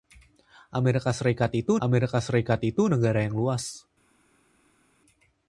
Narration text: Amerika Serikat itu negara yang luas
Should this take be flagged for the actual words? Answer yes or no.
yes